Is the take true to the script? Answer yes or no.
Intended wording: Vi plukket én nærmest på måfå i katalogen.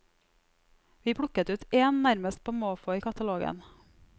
no